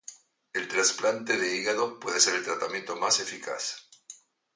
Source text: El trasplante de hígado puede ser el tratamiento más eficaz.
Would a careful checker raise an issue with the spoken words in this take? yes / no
no